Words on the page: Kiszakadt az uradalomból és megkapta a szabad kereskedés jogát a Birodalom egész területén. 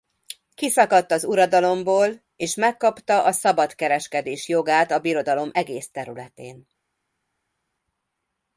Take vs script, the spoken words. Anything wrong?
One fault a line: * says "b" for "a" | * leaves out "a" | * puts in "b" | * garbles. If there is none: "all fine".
all fine